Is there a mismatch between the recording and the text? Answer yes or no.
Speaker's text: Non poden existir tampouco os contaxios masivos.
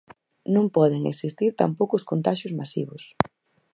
no